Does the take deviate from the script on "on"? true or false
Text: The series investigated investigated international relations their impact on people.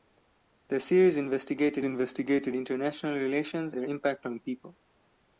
false